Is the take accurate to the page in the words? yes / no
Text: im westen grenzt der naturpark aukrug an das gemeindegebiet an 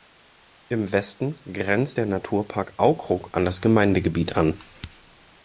yes